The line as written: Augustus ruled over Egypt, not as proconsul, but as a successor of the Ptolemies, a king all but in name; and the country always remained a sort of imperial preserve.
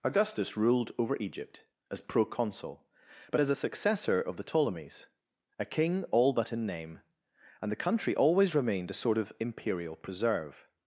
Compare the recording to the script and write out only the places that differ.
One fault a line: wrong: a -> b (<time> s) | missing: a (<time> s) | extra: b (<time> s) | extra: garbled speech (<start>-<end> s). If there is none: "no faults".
missing: not (1.7 s)